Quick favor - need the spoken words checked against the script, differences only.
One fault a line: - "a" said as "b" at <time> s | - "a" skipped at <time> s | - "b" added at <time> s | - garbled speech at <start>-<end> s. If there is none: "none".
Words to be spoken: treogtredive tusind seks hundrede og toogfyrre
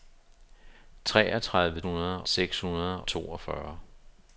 - "tusind" said as "hundrede" at 1.8 s
- "og" skipped at 3.0 s